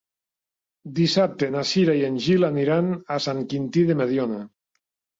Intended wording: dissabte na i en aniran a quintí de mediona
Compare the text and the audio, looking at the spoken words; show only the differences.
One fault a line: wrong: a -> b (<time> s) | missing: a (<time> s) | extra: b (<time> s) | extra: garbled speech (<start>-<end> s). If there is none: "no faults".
extra: cira (1.7 s)
extra: gil (2.3 s)
extra: sant (3.2 s)